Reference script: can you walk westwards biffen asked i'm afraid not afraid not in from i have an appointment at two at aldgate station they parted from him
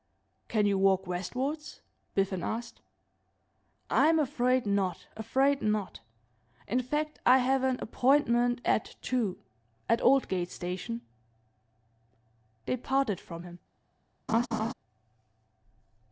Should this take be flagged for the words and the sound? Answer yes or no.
yes